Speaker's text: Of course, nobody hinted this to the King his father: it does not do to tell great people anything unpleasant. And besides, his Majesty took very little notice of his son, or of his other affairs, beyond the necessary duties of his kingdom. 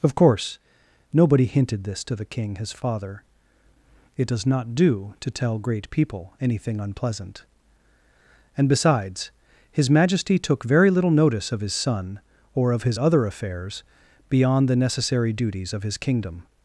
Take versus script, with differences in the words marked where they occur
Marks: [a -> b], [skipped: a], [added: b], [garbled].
Of course, nobody hinted this to the King his father: it does not do to tell great people anything unpleasant. And besides, his Majesty took very little notice of his son, or of his other affairs, beyond the necessary duties of his kingdom.